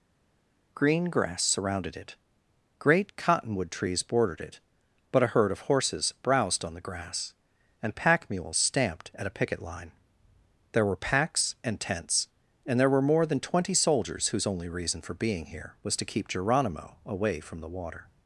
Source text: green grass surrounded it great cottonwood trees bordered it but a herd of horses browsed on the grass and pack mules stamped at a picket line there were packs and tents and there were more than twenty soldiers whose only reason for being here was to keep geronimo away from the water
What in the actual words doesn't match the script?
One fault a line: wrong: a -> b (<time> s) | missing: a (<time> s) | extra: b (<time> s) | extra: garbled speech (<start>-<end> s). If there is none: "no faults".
no faults